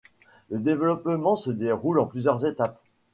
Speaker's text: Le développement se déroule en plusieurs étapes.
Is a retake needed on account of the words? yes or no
no